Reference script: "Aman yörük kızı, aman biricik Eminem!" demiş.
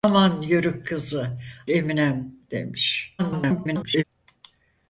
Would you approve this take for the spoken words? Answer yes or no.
no